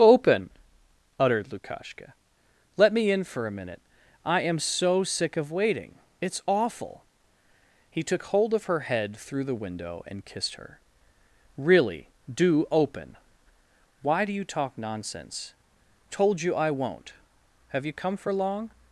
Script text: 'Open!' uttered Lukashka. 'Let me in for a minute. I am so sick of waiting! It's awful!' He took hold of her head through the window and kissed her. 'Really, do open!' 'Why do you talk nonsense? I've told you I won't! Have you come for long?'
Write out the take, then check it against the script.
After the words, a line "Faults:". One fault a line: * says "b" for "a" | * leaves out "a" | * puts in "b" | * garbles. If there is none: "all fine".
'Open!' uttered Lukashka. 'Let me in for a minute. I am so sick of waiting! It's awful!' He took hold of her head through the window and kissed her. 'Really, do open!' 'Why do you talk nonsense? Told you I won't! Have you come for long?'
Faults:
* leaves out "I've"